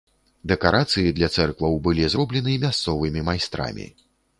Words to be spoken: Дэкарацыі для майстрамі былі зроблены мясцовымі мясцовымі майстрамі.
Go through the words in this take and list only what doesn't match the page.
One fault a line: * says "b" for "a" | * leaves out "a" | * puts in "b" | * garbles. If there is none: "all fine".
* says "цэркваў" for "майстрамі"
* leaves out "мясцовымі"